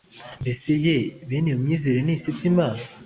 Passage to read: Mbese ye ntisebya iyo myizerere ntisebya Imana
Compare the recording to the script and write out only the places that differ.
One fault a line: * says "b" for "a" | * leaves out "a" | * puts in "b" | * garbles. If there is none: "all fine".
* says "bene" for "ntisebya"